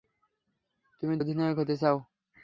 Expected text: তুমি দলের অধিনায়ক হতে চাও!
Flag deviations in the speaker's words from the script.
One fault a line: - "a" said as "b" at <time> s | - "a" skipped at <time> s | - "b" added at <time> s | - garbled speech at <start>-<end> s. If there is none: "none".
- "দলের" skipped at 1.1 s